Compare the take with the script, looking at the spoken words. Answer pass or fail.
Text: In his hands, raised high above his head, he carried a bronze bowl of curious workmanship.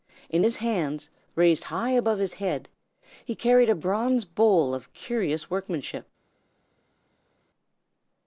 pass